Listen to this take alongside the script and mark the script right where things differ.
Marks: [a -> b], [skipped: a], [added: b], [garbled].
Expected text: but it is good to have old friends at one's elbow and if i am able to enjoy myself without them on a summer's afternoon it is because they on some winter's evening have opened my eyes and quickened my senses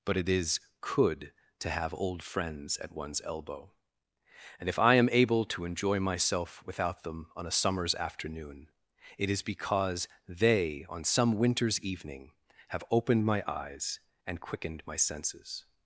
but it is [good -> could] to have old friends at one's elbow and if i am able to enjoy myself without them on a summer's afternoon it is because they on some winter's evening have opened my eyes and quickened my senses